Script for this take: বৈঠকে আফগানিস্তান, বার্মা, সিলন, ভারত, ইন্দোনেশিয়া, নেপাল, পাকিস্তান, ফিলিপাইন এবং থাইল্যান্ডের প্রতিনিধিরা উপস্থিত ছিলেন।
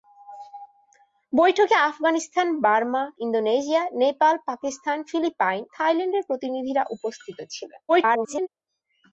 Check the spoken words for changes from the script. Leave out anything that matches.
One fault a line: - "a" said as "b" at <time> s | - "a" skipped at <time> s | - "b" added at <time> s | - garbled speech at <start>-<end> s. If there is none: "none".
- "সিলন ভারত" skipped at 3.0 s
- "এবং" skipped at 5.6 s
- garbled speech at 7.9-8.5 s